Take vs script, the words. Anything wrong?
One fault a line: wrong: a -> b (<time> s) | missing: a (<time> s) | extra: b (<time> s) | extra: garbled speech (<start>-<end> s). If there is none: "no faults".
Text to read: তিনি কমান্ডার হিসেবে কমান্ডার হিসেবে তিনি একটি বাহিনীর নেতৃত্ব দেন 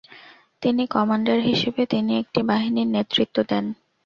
missing: কমান্ডার হিসেবে (1.8 s)